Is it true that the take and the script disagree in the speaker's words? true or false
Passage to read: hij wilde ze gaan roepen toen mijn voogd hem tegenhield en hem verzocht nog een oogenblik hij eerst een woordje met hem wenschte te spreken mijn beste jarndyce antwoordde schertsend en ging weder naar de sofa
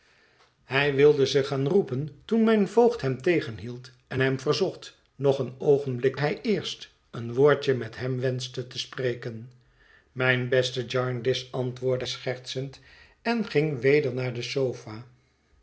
false